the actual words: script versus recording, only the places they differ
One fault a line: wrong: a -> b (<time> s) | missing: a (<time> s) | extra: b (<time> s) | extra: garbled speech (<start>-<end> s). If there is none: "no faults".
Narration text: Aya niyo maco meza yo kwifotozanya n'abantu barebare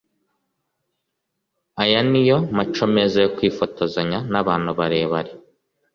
no faults